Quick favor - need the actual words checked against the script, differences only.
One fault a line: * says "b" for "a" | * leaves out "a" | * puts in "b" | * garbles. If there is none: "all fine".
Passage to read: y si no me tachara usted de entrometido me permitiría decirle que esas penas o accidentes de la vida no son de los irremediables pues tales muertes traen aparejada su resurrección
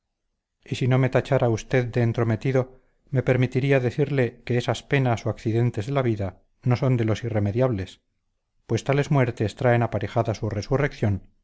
all fine